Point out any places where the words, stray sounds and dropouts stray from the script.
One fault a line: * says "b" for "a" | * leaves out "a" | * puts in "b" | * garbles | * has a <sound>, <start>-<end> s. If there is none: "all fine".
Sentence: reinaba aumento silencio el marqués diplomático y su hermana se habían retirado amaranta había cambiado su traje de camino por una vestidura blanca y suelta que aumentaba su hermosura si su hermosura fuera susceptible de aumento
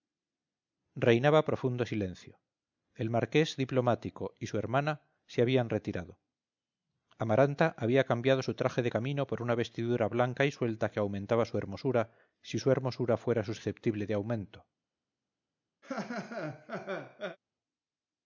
* says "profundo" for "aumento"
* has a laugh, 15.8-17.4 s